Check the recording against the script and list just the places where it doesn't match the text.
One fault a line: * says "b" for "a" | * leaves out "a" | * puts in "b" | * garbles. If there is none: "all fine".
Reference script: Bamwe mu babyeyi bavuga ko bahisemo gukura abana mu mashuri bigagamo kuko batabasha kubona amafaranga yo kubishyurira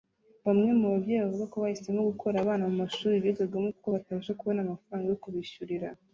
all fine